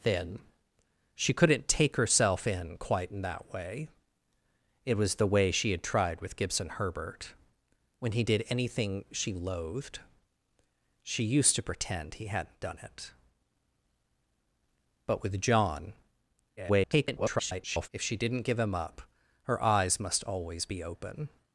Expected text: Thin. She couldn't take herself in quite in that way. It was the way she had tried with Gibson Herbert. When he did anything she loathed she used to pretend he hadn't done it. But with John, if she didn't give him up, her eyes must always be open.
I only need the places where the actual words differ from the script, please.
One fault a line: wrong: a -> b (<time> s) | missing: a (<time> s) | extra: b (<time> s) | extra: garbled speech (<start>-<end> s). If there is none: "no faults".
extra: garbled speech (16.6-17.9 s)